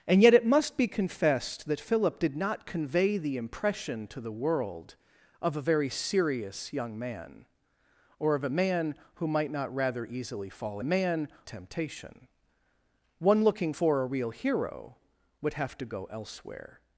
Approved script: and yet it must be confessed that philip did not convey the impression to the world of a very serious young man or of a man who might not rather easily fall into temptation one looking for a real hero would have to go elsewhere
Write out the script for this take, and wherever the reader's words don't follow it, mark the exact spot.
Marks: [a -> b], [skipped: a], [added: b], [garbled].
and yet it must be confessed that philip did not convey the impression to the world of a very serious young man or of a man who might not rather easily fall [into -> man] temptation one looking for a real hero would have to go elsewhere